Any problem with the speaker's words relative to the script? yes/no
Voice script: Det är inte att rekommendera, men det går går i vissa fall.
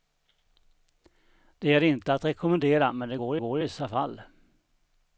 no